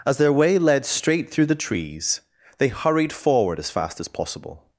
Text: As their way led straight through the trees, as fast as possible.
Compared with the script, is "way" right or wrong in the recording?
right